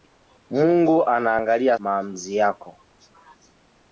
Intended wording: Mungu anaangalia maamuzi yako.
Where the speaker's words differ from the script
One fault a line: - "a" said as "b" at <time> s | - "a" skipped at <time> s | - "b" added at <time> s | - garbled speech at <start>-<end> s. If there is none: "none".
none